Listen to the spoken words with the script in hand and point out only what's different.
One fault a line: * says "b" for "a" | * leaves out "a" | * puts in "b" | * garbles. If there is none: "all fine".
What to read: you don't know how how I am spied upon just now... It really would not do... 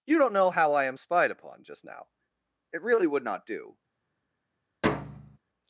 * leaves out "how"